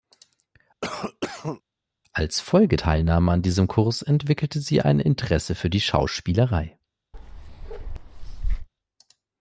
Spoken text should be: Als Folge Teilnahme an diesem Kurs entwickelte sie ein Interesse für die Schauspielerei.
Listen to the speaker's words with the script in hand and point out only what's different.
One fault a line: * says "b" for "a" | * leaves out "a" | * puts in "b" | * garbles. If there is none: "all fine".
all fine